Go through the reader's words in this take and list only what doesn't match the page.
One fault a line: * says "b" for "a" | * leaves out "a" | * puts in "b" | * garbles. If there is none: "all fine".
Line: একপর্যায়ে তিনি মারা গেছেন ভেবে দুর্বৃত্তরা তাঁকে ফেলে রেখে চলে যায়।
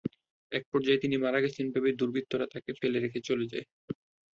all fine